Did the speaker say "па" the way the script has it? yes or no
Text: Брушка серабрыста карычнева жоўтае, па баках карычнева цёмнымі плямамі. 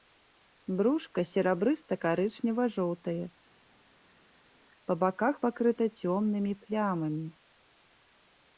yes